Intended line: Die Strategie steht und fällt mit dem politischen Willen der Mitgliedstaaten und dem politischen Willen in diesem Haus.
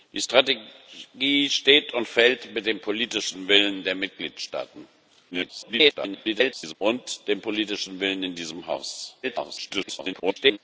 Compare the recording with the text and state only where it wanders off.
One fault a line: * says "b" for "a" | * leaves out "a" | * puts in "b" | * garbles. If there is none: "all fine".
* garbles
* garbles